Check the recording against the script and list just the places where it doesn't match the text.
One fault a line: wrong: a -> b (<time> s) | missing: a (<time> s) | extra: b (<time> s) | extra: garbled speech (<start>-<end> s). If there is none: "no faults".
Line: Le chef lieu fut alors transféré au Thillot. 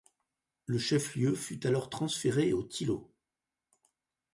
no faults